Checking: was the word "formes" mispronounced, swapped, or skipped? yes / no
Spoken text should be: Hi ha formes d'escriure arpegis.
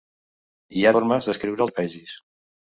no